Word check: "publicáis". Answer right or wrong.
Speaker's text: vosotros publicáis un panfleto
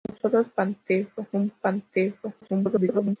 wrong